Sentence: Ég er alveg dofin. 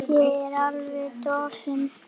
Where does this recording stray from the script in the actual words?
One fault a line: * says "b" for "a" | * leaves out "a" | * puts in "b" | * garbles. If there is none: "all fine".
all fine